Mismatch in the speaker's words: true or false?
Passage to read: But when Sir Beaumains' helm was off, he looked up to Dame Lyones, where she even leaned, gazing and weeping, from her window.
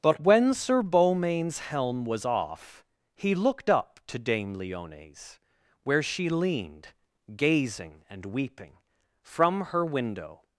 true